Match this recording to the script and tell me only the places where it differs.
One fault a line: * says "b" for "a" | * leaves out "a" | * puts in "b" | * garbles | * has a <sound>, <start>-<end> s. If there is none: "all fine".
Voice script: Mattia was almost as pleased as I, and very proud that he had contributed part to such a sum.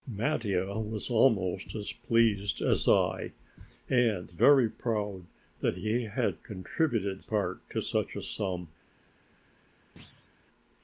* has a thud, 10.0-10.3 s